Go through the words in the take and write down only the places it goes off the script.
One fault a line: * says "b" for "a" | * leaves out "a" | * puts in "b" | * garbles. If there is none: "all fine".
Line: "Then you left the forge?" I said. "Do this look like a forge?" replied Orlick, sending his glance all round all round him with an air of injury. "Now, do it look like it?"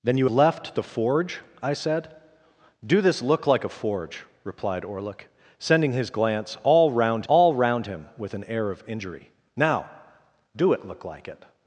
all fine